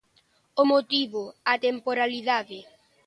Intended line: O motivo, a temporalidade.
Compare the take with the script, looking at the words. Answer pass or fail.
pass